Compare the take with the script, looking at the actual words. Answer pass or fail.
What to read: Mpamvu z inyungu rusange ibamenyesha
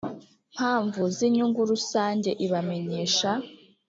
pass